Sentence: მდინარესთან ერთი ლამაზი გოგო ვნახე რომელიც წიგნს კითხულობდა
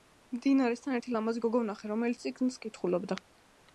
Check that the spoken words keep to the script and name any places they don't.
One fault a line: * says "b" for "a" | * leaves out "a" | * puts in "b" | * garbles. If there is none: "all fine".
all fine